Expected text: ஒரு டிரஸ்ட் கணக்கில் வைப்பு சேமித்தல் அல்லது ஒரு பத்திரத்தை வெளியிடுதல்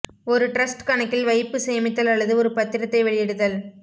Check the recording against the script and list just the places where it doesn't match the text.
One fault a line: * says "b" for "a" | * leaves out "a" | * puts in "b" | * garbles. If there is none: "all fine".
all fine